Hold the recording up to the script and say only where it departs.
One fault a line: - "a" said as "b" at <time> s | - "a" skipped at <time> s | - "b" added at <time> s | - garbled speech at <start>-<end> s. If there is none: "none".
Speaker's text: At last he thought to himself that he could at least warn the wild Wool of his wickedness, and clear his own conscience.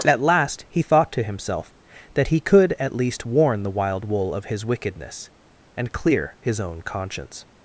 none